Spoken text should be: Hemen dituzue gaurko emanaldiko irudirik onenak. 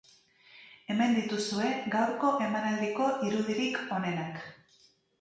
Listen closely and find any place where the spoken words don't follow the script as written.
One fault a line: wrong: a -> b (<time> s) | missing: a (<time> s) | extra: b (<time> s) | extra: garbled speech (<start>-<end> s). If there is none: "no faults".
no faults